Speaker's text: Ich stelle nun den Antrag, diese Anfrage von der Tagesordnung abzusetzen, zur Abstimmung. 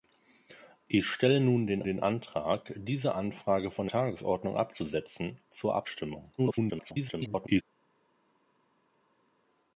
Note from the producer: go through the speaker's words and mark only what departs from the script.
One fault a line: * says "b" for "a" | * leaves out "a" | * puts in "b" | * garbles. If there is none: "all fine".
* puts in "den"
* leaves out "der"
* garbles